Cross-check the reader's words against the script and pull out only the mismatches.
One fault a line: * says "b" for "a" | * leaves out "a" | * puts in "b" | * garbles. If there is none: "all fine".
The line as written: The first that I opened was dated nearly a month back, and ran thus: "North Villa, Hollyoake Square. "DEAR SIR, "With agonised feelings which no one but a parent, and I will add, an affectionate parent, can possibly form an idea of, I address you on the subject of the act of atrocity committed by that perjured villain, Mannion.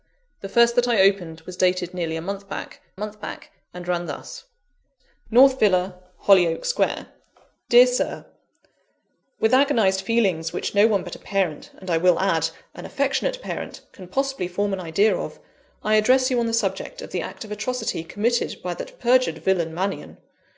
* puts in "month back"